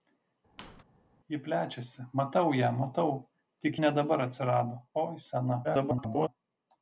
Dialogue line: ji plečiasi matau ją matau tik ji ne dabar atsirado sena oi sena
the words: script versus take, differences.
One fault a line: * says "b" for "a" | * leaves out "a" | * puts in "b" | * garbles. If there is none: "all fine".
* leaves out "ji"
* leaves out "sena"
* garbles